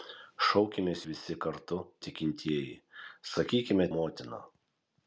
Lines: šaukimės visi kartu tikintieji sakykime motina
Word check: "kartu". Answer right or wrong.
right